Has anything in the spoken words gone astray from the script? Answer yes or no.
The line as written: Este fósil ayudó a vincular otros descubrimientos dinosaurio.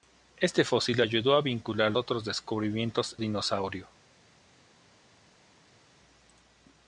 no